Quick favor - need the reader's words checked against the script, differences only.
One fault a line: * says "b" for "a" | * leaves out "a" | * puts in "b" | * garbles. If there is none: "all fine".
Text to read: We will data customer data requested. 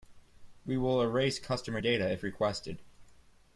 * says "erase" for "data"
* puts in "if"